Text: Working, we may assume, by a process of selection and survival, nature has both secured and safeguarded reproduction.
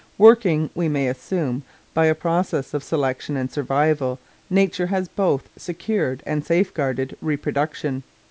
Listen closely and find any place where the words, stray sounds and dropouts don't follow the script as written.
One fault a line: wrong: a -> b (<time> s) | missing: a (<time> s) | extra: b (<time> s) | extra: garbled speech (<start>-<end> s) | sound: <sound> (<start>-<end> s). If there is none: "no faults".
no faults